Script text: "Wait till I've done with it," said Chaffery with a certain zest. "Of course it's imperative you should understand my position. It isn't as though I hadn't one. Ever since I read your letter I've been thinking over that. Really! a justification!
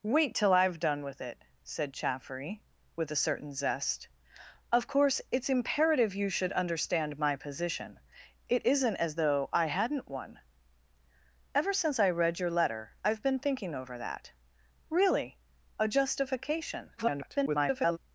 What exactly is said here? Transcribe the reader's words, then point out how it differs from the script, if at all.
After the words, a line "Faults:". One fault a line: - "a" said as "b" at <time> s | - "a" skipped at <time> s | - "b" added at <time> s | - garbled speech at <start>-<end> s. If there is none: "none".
"Wait till I've done with it," said Chaffery with a certain zest. "Of course it's imperative you should understand my position. It isn't as though I hadn't one. Ever since I read your letter I've been thinking over that. Really! a justification! [garbled]
Faults:
- garbled speech at 17.0-18.0 s